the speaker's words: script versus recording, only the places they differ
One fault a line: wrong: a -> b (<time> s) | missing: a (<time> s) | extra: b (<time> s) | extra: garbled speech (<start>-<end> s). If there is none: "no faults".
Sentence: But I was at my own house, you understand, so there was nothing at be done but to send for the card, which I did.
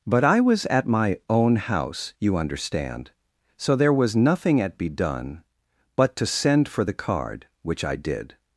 no faults